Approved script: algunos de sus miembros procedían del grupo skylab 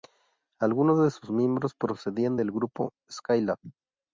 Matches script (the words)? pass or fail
pass